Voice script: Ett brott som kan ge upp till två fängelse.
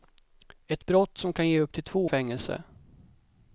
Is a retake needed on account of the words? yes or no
no